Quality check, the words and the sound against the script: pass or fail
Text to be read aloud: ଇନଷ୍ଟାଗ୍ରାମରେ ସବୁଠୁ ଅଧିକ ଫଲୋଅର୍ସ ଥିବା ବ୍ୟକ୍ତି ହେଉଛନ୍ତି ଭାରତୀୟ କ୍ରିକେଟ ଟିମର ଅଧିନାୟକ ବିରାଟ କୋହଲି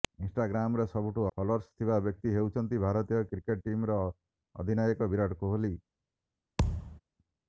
fail